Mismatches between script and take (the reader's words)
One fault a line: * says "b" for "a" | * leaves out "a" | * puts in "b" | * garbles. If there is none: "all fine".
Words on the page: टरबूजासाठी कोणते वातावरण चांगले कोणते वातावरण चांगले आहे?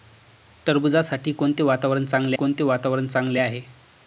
all fine